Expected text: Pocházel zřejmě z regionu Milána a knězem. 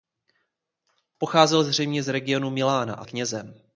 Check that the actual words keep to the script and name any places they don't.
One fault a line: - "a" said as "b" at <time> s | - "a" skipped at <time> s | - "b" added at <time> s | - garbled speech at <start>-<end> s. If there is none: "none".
none